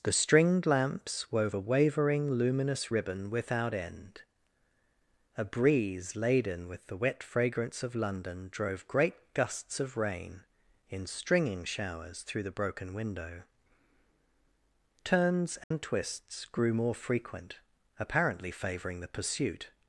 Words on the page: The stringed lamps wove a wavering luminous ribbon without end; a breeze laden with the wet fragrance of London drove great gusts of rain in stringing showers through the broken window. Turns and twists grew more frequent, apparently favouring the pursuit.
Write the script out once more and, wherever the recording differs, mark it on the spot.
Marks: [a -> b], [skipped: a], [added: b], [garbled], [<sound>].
The stringed lamps wove a wavering luminous ribbon without end; a breeze laden with the wet fragrance of London drove great gusts of rain in stringing showers through the broken window. Turns and [dropout] twists grew more frequent, apparently favouring the pursuit.